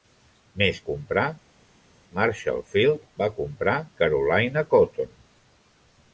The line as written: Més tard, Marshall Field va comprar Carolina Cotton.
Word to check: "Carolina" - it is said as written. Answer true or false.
true